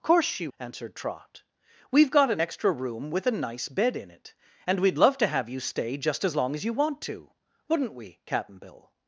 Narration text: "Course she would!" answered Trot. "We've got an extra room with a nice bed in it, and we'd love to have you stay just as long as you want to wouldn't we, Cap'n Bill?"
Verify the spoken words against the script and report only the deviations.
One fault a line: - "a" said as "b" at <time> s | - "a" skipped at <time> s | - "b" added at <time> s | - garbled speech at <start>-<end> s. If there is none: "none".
- "would" skipped at 0.5 s